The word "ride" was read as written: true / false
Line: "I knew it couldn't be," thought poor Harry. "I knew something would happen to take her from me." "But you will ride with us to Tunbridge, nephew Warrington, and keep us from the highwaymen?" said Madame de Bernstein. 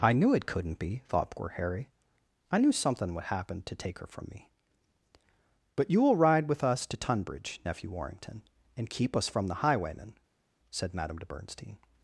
true